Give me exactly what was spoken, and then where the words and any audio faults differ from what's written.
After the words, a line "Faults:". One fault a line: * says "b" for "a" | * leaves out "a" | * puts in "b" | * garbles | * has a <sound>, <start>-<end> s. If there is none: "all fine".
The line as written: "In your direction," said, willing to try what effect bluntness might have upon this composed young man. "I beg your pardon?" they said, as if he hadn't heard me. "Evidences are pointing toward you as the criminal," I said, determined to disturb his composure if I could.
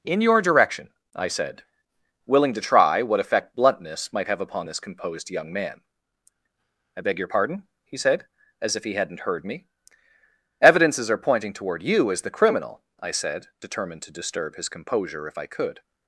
"In your direction," I said, willing to try what effect bluntness might have upon this composed young man. "I beg your pardon?" he said, as if he hadn't heard me. "Evidences are pointing toward you as the criminal," I said, determined to disturb his composure if I could.
Faults:
* puts in "I"
* says "he" for "they"